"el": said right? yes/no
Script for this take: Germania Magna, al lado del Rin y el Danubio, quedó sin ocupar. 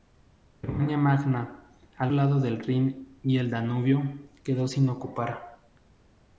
yes